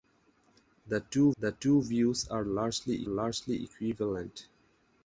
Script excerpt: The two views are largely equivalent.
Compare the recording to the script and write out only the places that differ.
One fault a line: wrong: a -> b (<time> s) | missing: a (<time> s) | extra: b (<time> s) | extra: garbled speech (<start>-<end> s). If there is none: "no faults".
extra: the two (1.4 s)
extra: largely (3.0 s)